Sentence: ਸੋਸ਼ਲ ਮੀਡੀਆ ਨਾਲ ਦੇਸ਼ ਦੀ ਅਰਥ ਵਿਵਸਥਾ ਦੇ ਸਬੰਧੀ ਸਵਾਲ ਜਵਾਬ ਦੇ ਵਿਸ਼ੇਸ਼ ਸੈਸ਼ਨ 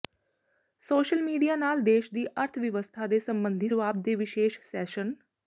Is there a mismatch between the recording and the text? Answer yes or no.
yes